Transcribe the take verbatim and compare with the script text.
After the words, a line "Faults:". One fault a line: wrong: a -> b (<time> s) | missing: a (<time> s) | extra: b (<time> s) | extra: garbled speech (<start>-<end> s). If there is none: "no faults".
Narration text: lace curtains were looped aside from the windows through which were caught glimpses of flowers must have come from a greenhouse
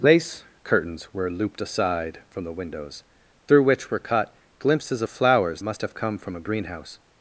lace curtains were looped aside from the windows through which were caught glimpses of flowers must have come from a greenhouse
Faults:
no faults